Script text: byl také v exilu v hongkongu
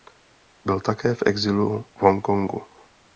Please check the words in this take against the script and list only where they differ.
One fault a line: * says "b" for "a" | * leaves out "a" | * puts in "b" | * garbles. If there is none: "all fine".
all fine